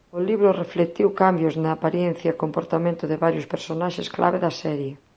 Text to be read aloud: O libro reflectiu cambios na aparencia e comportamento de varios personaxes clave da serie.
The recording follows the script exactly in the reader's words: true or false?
true